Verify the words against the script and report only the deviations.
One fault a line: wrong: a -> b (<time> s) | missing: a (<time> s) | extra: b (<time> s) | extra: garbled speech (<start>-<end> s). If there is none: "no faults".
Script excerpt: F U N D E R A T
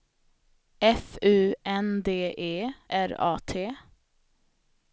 no faults